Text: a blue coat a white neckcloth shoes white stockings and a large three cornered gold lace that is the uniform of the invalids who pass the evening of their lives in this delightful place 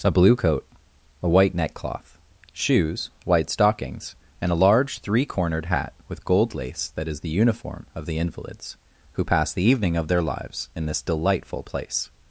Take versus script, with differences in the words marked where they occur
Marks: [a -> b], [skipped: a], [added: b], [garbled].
a blue coat a white neckcloth shoes white stockings and a large three cornered [added: hat with] gold lace that is the uniform of the invalids who pass the evening of their lives in this delightful place